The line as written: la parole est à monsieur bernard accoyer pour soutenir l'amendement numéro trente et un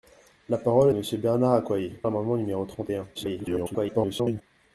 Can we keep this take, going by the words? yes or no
no